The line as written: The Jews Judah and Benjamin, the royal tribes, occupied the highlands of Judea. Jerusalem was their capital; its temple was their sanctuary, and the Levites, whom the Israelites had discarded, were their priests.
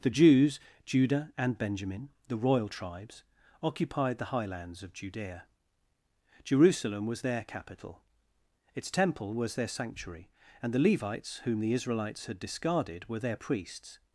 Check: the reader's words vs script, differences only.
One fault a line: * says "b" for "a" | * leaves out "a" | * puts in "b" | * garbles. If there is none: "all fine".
all fine